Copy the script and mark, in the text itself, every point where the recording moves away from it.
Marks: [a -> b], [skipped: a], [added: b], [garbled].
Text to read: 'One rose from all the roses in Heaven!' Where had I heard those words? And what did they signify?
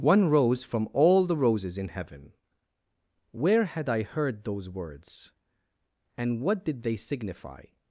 'One rose from all the roses in Heaven!' Where had I heard those words? And what did they signify?